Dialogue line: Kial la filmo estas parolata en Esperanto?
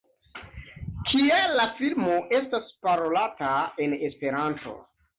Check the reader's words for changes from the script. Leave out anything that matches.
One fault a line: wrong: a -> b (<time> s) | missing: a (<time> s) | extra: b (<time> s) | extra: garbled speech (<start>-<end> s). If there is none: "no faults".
no faults